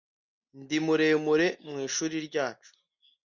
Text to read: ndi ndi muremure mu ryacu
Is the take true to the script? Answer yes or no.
no